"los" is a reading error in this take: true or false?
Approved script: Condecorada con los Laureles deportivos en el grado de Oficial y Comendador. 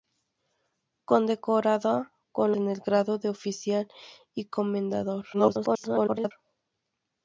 true